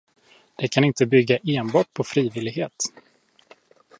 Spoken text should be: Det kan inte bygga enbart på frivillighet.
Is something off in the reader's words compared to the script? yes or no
no